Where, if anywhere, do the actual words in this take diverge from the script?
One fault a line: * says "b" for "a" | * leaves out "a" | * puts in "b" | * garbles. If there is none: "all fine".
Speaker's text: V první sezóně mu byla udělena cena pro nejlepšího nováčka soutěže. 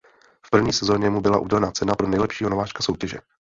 all fine